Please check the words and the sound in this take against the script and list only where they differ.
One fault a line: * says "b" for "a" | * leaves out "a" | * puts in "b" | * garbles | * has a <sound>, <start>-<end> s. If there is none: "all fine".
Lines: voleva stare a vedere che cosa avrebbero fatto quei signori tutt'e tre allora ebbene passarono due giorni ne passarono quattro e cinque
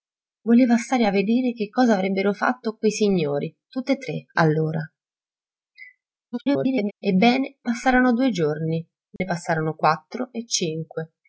* garbles
* has a dropout, 9.2-9.2 s